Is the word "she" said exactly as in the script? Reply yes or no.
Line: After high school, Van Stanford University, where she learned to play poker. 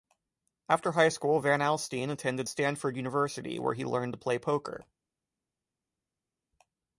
no